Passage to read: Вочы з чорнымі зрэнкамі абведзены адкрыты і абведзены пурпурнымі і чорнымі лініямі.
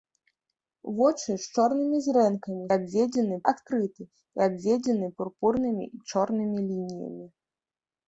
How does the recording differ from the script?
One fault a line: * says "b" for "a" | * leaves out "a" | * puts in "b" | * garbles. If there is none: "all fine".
all fine